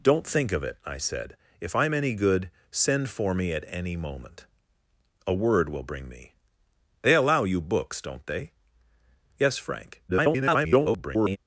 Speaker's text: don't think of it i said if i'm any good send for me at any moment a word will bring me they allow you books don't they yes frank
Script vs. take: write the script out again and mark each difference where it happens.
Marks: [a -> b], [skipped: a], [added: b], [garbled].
don't think of it i said if i'm any good send for me at any moment a word will bring me they allow you books don't they yes frank [garbled]